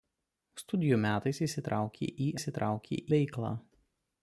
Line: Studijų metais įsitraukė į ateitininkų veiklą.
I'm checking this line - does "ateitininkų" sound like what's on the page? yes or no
no